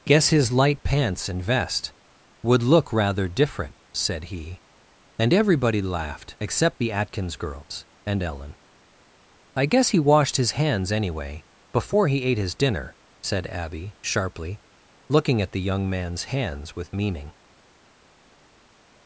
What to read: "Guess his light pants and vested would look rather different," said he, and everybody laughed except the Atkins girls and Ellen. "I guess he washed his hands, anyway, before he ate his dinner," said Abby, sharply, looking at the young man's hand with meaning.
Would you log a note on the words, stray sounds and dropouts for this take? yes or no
yes